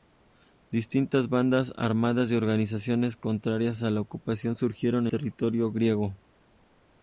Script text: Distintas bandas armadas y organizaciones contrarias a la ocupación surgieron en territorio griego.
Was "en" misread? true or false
true